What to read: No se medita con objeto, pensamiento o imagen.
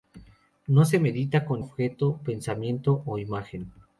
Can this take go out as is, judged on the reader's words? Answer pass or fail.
pass